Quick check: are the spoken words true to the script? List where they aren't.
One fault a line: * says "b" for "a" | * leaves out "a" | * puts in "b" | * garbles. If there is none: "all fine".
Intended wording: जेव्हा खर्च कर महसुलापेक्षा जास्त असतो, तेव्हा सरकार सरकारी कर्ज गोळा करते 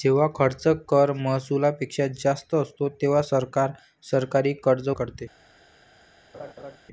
* leaves out "गोळा"